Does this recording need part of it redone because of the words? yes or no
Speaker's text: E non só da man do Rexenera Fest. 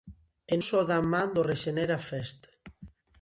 yes